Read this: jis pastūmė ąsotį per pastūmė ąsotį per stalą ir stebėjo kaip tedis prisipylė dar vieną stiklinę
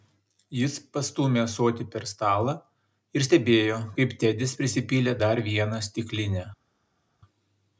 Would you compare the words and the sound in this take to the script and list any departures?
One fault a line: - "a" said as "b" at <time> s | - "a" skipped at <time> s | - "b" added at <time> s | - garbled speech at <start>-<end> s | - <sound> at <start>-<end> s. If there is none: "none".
- "pastūmė ąsotį per" skipped at 2.1 s